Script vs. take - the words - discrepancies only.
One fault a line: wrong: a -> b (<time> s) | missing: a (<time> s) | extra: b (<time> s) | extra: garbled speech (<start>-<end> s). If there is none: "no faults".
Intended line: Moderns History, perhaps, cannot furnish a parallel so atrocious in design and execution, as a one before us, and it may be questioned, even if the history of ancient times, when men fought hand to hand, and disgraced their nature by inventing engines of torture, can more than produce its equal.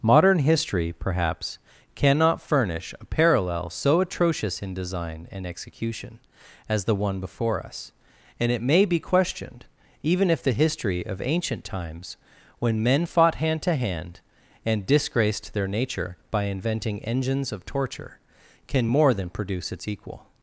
wrong: Moderns -> Modern (0.0 s)
wrong: a -> the (6.8 s)